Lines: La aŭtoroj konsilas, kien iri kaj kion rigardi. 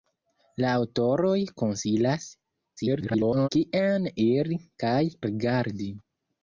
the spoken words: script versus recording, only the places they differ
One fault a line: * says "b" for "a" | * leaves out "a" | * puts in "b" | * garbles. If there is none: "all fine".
* garbles
* leaves out "kion"